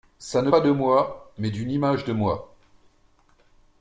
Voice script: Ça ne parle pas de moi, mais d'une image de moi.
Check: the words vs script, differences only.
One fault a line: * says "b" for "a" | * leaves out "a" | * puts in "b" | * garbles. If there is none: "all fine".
* leaves out "parle"